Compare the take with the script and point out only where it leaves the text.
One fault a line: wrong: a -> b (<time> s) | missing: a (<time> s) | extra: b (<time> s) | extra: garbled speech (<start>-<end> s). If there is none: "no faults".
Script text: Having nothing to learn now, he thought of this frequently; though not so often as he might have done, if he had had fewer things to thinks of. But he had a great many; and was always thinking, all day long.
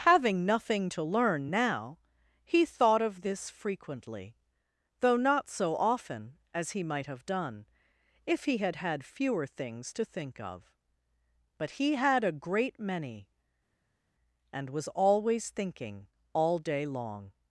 wrong: thinks -> think (10.0 s)